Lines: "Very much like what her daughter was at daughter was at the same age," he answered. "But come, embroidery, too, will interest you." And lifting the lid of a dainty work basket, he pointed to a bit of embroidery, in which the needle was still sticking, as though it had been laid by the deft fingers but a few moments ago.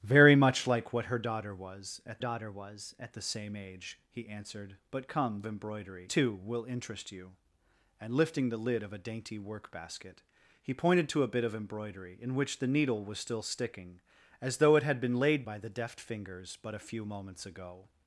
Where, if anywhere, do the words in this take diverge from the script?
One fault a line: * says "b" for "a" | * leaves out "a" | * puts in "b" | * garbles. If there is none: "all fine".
all fine